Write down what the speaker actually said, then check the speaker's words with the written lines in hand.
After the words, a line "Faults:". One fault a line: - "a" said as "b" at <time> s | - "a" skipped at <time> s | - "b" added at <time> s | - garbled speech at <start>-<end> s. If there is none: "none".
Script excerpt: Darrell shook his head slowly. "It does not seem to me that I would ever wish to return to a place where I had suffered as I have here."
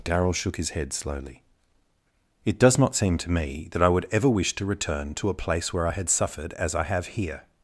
Darrell shook his head slowly. "It does not seem to me that I would ever wish to return to a place where I had suffered as I have here."
Faults:
none